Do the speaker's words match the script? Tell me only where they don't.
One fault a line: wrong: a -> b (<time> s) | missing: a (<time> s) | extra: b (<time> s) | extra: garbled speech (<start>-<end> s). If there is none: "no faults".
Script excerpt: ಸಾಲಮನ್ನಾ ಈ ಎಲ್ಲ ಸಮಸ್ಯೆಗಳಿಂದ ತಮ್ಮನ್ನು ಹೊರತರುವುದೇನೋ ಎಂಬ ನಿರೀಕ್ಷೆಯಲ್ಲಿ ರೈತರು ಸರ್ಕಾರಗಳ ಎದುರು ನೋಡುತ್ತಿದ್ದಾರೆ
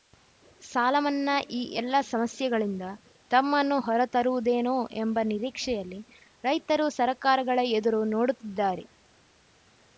no faults